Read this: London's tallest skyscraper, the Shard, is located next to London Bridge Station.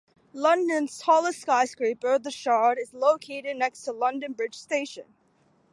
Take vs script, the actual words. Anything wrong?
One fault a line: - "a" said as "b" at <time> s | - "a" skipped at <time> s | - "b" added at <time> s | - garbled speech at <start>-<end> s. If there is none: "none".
none